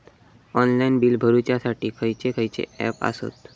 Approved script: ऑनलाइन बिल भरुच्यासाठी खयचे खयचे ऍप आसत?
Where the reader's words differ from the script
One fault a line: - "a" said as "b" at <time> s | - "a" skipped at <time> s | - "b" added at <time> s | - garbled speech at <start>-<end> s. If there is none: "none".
none